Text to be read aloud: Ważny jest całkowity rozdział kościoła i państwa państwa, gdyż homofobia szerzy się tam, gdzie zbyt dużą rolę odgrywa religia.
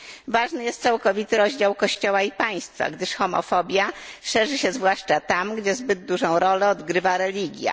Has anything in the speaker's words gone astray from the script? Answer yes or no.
yes